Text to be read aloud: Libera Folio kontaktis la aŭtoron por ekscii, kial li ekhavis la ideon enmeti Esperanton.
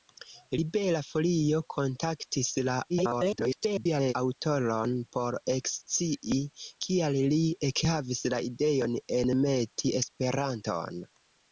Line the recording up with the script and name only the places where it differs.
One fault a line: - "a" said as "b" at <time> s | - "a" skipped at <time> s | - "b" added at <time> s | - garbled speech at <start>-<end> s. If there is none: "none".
- garbled speech at 2.9-4.1 s